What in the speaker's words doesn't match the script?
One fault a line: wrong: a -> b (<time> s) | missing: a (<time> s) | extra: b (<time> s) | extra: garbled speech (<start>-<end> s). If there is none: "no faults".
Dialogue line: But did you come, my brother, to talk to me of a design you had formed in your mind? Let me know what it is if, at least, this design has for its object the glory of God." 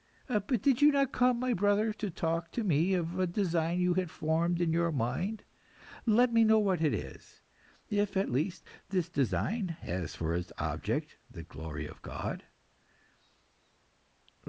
extra: not (0.9 s)